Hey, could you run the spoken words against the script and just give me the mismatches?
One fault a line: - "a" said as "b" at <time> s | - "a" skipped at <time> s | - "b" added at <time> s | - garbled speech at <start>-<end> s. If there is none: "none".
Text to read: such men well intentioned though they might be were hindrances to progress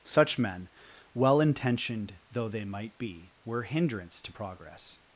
- "hindrances" said as "hindrance" at 3.6 s